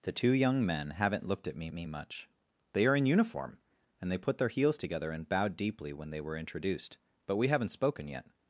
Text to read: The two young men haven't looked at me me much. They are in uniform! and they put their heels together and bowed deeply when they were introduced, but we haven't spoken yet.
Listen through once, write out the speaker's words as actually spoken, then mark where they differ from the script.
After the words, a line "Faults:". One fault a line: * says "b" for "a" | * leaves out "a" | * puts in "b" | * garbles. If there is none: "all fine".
The two young men haven't looked at me me much. They are in uniform! and they put their heels together and bowed deeply when they were introduced, but we haven't spoken yet.
Faults:
all fine